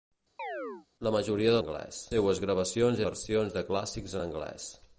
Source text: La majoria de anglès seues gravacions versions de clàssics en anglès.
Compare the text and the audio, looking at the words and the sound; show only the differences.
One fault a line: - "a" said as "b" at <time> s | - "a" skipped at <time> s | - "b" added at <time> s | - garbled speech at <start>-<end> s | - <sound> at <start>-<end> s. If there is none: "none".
- chirp at 0.4-0.9 s